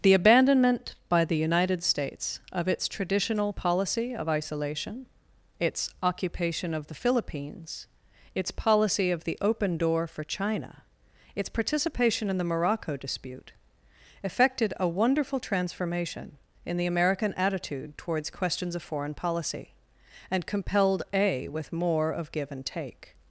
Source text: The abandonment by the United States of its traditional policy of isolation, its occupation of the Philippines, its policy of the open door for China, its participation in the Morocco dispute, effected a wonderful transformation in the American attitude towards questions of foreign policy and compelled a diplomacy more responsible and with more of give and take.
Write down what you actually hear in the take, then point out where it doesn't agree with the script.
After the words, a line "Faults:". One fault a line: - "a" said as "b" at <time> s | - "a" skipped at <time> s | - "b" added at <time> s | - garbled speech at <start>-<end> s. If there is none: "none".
The abandonment by the United States of its traditional policy of isolation, its occupation of the Philippines, its policy of the open door for China, its participation in the Morocco dispute, effected a wonderful transformation in the American attitude towards questions of foreign policy and compelled a with more of give and take.
Faults:
- "diplomacy more responsible and" skipped at 21.5 s